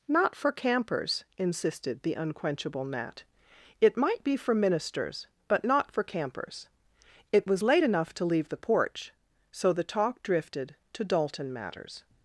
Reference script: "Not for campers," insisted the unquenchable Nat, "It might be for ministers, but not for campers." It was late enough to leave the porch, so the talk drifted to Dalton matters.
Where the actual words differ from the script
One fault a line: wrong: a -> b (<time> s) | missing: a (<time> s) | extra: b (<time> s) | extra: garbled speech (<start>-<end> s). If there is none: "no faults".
no faults